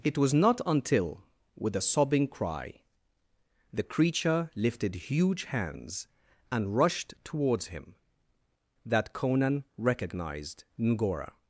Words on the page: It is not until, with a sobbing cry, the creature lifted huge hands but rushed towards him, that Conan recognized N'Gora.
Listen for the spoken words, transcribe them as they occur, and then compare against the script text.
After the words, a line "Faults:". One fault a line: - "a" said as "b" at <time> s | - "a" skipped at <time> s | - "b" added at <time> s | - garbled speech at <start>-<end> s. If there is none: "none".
It was not until, with a sobbing cry, the creature lifted huge hands and rushed towards him, that Conan recognized N'Gora.
Faults:
- "is" said as "was" at 0.2 s
- "but" said as "and" at 6.5 s